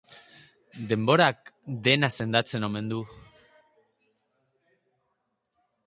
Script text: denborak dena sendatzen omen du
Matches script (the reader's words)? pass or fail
pass